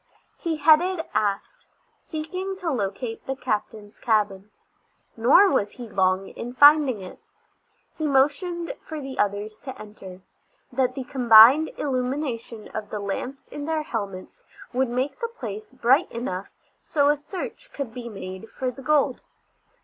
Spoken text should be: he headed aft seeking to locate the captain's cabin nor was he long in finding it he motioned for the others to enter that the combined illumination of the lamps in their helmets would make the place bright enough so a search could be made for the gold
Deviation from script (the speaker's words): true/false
false